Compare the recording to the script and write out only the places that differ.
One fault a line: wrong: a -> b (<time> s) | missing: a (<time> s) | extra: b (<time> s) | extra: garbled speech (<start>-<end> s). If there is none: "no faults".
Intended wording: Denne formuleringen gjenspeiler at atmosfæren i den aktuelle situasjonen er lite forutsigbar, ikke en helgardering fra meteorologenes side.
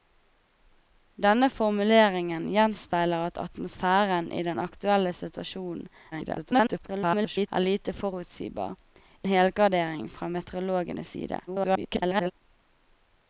extra: garbled speech (6.1-7.5 s)
missing: ikke (8.7 s)
extra: garbled speech (11.5-12.3 s)